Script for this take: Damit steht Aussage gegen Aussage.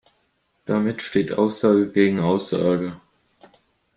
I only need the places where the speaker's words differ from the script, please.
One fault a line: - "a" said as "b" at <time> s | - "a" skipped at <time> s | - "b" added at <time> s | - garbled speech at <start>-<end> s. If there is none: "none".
none